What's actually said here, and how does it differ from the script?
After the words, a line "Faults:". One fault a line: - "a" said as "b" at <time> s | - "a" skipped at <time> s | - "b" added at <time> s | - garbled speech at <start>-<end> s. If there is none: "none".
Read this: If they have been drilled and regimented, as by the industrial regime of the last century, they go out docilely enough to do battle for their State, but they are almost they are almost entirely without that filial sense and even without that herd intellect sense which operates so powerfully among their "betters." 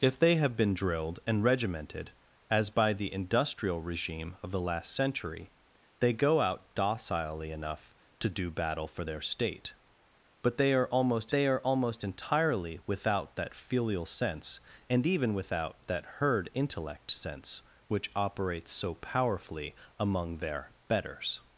If they have been drilled and regimented, as by the industrial regime of the last century, they go out docilely enough to do battle for their State, but they are almost they are almost entirely without that filial sense and even without that herd intellect sense which operates so powerfully among their "betters."
Faults:
none